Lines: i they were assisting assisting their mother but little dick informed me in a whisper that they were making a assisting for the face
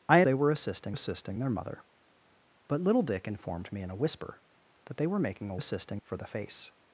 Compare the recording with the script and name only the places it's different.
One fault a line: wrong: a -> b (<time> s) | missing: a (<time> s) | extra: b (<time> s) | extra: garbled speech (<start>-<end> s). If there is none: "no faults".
no faults